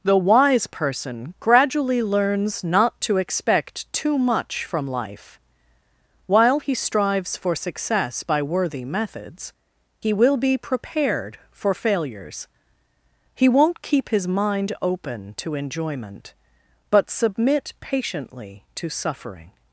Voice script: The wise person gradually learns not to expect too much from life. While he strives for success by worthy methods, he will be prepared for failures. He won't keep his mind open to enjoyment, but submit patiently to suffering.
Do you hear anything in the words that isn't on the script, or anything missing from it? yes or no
no